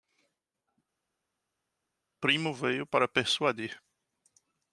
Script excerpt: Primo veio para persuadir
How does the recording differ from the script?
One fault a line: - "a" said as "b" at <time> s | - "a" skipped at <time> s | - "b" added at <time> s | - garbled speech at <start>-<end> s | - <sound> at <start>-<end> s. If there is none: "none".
none